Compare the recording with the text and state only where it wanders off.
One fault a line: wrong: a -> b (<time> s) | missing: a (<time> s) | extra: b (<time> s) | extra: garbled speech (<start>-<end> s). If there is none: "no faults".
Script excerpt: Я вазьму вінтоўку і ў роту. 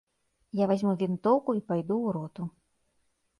extra: пайду (1.7 s)